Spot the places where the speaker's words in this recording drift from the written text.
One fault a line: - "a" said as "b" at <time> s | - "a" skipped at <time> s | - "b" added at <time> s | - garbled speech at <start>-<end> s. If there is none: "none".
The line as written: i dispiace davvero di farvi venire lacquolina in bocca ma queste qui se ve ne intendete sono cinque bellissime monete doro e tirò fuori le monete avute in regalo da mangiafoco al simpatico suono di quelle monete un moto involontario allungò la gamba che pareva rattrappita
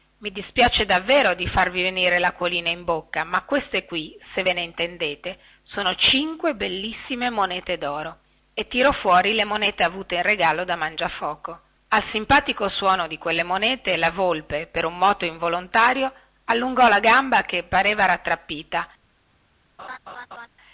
- "la volpe per" added at 14.0 s